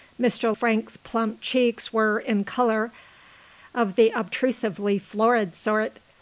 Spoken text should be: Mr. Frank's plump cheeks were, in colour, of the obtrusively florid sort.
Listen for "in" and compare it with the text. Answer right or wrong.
right